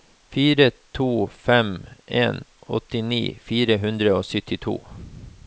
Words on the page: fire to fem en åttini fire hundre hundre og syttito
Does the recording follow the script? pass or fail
fail